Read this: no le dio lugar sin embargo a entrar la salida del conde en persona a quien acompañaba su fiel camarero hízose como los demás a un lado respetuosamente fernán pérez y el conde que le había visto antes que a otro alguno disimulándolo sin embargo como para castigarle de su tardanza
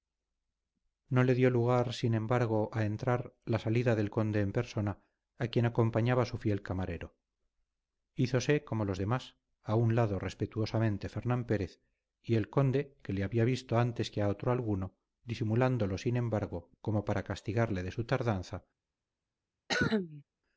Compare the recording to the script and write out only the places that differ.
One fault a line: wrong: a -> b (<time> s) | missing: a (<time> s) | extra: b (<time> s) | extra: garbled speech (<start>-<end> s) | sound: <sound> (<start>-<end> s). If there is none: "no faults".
sound: cough (19.7-20.2 s)